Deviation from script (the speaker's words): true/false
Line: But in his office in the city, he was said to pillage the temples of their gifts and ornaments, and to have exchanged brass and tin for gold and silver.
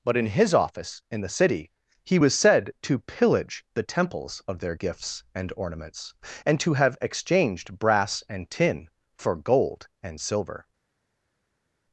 false